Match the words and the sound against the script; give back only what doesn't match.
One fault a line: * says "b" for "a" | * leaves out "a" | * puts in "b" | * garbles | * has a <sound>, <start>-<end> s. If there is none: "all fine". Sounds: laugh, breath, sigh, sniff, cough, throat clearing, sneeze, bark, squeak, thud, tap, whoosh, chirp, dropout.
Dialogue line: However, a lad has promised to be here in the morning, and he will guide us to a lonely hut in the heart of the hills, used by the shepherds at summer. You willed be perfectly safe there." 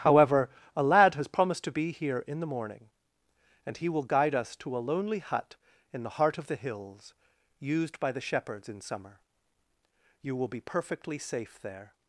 * says "in" for "at"
* says "will" for "willed"